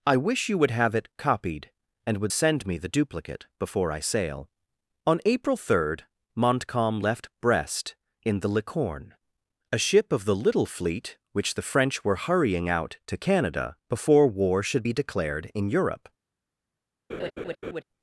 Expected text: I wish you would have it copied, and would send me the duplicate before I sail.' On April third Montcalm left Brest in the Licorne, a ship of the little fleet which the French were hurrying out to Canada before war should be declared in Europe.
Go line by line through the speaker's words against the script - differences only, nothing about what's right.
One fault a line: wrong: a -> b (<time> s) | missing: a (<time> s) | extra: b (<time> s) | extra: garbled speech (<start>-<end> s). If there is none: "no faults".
no faults